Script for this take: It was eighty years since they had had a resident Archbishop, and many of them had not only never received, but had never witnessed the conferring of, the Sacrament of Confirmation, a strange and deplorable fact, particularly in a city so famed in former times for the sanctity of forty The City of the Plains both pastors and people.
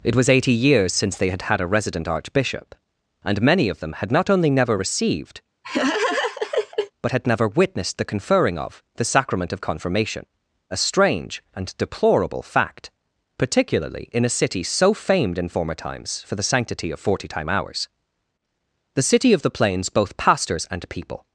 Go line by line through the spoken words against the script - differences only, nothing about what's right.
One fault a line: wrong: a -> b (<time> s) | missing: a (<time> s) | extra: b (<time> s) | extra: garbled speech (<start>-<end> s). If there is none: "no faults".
extra: time hours (17.3 s)